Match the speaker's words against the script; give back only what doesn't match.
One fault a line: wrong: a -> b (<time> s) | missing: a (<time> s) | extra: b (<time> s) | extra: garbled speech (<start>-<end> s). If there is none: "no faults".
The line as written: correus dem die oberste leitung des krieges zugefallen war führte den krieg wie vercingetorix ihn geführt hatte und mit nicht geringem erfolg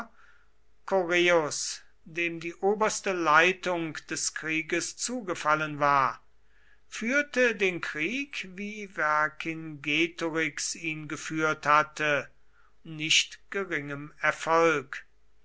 missing: und mit (12.3 s)